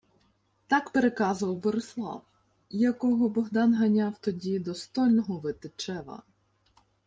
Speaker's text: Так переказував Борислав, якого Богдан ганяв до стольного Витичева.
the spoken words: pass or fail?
fail